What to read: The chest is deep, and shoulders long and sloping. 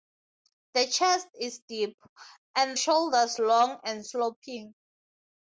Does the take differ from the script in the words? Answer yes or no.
no